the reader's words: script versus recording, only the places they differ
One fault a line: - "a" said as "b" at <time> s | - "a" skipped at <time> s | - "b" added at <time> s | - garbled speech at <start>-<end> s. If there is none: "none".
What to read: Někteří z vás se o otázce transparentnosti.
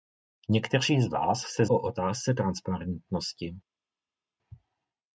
none